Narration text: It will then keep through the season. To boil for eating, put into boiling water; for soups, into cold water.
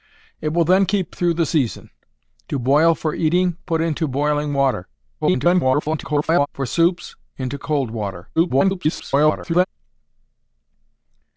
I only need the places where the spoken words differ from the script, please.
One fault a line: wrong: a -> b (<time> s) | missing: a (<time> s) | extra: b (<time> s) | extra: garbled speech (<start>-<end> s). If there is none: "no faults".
extra: garbled speech (5.2-6.5 s)
extra: garbled speech (8.4-9.7 s)